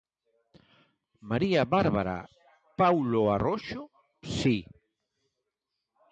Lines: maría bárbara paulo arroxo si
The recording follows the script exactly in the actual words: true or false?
true